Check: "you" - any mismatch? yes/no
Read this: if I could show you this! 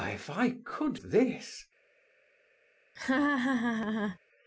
yes